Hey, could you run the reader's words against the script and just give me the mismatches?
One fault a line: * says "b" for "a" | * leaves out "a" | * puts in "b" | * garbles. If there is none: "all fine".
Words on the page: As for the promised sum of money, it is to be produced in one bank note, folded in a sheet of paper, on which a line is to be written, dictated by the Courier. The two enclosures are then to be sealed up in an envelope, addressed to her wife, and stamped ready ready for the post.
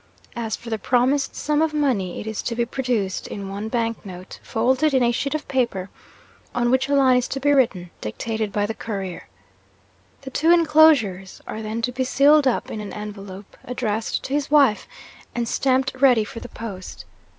* says "his" for "her"
* leaves out "ready"